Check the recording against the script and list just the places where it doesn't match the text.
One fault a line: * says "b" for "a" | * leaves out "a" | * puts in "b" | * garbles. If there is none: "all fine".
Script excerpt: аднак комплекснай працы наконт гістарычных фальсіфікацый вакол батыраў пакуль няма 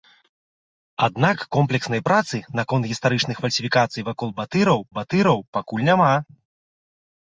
* puts in "батыраў"